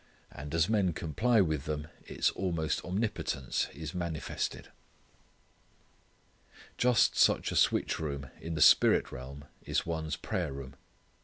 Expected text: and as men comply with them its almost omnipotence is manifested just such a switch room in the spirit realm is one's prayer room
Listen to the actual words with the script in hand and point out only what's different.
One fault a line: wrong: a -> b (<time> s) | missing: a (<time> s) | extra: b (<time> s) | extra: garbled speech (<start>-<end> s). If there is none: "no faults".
no faults